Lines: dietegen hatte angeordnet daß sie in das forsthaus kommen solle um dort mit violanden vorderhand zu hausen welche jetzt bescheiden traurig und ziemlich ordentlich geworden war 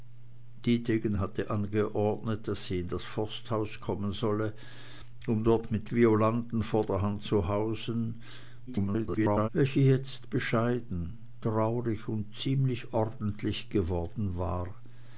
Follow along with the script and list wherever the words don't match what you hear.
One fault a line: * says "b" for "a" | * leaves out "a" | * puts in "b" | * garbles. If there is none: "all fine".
* garbles